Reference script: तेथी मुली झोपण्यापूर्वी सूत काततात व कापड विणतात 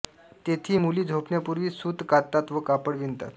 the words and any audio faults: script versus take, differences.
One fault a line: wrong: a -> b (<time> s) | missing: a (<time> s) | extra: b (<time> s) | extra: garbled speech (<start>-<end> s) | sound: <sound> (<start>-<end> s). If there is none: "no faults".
no faults